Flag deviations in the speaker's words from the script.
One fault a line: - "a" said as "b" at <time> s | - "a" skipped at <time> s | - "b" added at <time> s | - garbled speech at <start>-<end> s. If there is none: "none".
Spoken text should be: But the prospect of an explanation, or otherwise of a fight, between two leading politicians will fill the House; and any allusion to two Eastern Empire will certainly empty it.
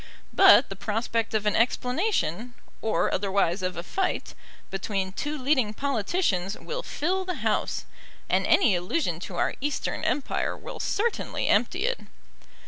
- "two" said as "our" at 9.3 s